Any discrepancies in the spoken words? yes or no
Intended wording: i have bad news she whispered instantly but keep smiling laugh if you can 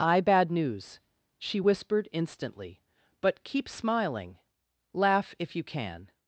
yes